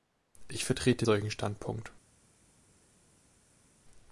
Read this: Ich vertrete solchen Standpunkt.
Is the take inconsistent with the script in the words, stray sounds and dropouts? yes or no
no